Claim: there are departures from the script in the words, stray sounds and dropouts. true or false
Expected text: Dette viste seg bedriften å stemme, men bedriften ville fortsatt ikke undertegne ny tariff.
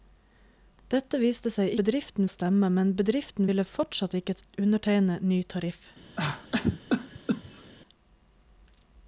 true